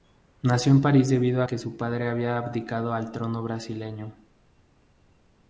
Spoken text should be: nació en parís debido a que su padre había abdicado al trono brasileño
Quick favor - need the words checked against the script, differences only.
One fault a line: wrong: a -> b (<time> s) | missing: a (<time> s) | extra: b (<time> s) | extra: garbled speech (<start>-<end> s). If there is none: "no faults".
missing: a (1.4 s)